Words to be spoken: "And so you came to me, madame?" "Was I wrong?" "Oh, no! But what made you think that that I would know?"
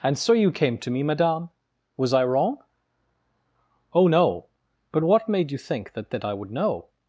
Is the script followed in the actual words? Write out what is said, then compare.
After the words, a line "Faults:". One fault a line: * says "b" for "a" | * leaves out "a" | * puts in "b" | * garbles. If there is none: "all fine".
"And so you came to me, madame?" "Was I wrong?" "Oh, no! But what made you think that that I would know?"
Faults:
all fine